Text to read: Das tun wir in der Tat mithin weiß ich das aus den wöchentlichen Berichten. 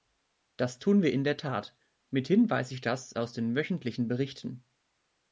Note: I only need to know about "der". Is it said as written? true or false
true